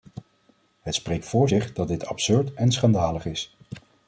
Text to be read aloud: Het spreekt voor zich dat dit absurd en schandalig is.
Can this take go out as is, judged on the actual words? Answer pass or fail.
pass